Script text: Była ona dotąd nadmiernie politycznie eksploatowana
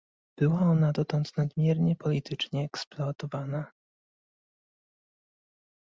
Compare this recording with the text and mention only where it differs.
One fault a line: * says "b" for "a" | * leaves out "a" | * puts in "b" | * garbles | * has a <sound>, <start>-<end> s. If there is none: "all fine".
all fine